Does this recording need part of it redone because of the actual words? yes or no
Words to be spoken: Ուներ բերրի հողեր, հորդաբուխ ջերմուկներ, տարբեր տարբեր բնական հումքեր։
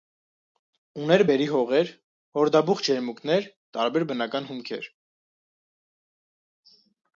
yes